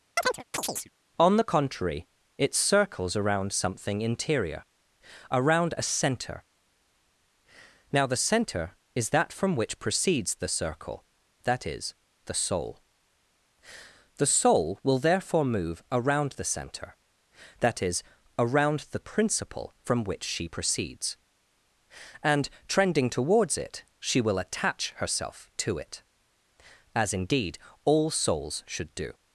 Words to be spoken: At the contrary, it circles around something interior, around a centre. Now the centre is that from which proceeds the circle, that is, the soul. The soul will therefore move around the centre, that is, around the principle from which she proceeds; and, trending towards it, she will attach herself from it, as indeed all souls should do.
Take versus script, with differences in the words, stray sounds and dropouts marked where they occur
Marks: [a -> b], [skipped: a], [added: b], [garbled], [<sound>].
[chirp] [At -> On] the contrary, it circles around something interior, around a centre. Now the centre is that from which proceeds the circle, that is, the soul. The soul will therefore move around the centre, that is, around the principle from which she proceeds; and, trending towards it, she will attach herself [from -> to] it, as indeed all souls should do.